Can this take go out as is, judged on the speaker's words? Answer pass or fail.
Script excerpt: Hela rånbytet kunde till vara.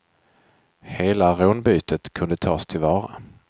fail